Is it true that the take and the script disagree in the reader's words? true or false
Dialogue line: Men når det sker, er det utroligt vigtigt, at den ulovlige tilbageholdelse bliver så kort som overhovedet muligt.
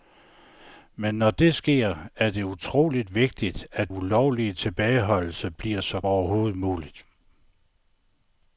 true